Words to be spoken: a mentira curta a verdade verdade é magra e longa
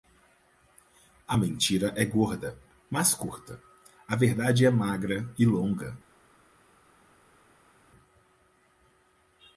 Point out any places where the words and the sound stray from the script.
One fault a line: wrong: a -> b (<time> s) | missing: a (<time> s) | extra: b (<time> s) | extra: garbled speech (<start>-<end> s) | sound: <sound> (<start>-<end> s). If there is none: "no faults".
extra: é gorda mas (1.9 s)
missing: verdade (4.6 s)